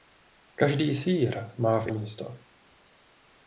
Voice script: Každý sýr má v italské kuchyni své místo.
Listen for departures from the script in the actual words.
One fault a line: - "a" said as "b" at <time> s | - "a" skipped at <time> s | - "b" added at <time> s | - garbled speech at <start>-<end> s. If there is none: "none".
- "italské kuchyni své" skipped at 1.9 s